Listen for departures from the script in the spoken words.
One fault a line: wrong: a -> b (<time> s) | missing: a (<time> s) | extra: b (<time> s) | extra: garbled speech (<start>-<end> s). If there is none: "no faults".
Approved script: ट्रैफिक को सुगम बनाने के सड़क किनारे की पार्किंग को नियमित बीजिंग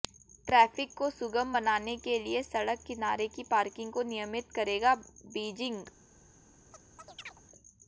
extra: लिए (2.2 s)
extra: करेगा (4.5 s)